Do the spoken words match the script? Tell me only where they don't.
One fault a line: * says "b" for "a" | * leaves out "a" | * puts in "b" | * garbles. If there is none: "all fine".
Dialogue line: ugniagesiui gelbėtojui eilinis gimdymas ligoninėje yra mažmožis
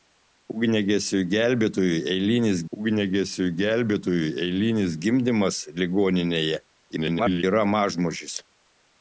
* puts in "ugniagesiui gelbėtojui eilinis"
* garbles